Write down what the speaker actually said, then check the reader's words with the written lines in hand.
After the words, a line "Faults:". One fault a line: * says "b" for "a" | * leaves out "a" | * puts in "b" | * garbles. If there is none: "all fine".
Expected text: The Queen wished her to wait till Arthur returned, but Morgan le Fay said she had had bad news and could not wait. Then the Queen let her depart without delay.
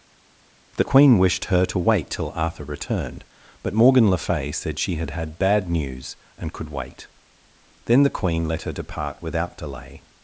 The Queen wished her to wait till Arthur returned, but Morgan le Fay said she had had bad news and could wait. Then the Queen let her depart without delay.
Faults:
* leaves out "not"